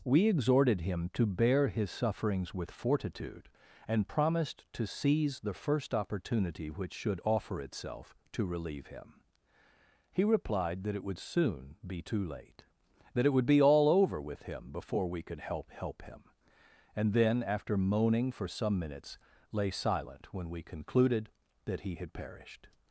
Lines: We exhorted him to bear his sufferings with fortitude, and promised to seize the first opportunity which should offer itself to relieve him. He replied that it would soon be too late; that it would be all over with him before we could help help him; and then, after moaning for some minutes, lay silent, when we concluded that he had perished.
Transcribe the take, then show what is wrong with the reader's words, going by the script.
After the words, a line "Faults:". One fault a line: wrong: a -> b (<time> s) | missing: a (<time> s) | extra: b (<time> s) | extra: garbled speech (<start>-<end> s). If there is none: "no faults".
We exhorted him to bear his sufferings with fortitude, and promised to seize the first opportunity which should offer itself to relieve him. He replied that it would soon be too late; that it would be all over with him before we could help help him; and then, after moaning for some minutes, lay silent, when we concluded that he had perished.
Faults:
no faults